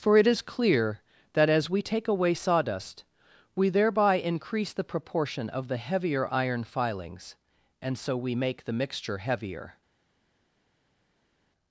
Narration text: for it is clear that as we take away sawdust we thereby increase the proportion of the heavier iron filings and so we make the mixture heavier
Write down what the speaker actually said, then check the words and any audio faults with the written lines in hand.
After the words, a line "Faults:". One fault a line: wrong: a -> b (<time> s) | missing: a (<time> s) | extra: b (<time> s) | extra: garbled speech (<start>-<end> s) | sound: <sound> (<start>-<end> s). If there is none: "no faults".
for it is clear that as we take away sawdust we thereby increase the proportion of the heavier iron filings and so we make the mixture heavier
Faults:
no faults